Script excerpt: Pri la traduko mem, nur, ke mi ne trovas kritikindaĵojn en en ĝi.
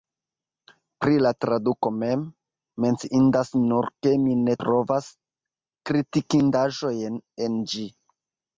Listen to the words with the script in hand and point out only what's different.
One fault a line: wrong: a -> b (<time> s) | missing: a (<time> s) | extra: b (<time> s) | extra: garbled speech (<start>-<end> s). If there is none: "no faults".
extra: menciindas (2.9 s)
missing: en (7.6 s)